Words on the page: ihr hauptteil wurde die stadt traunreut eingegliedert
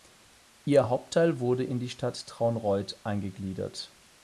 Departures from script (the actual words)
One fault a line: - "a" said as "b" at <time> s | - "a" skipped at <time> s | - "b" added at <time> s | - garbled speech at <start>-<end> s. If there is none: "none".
- "in" added at 1.6 s